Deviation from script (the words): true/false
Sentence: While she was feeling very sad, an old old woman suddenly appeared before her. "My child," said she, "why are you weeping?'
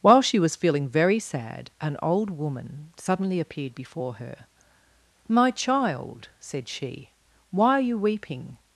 true